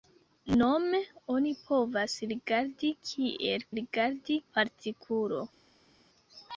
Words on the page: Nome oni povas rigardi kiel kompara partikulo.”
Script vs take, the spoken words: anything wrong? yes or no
yes